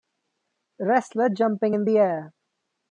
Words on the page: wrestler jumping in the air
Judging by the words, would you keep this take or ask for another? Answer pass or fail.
pass